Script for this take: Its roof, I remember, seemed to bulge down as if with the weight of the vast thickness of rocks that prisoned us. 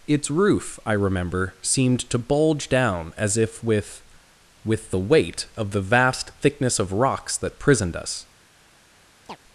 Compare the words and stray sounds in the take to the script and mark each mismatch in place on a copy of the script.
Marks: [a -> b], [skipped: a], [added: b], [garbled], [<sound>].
Its roof, I remember, seemed to bulge down as if with [added: with] the weight of the vast thickness of rocks that prisoned us. [chirp]